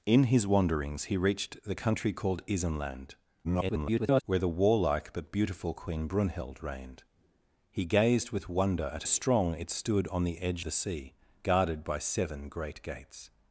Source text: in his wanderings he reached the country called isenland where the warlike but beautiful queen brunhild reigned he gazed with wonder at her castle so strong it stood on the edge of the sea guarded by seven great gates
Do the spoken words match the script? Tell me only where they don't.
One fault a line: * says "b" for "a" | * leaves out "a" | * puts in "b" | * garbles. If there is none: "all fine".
* garbles
* leaves out "her castle so"
* leaves out "of"